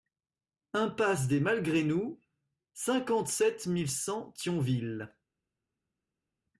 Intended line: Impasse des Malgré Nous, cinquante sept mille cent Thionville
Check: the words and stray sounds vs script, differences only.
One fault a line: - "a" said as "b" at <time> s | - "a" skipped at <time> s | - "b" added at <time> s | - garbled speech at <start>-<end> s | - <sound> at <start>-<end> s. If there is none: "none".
none